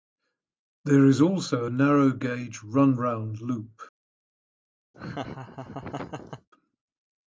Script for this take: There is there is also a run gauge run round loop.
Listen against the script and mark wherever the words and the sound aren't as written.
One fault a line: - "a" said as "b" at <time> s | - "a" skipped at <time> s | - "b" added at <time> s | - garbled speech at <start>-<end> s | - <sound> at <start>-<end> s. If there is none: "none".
- "there is" skipped at 1.2 s
- "run" said as "narrow" at 1.7 s
- laugh at 4.9-6.5 s